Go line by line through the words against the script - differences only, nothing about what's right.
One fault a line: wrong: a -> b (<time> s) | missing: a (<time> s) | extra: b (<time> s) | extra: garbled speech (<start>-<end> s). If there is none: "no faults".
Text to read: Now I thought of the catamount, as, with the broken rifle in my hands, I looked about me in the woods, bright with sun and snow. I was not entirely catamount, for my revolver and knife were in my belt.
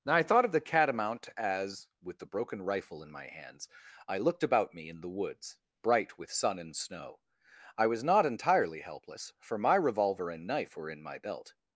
wrong: catamount -> helpless (8.8 s)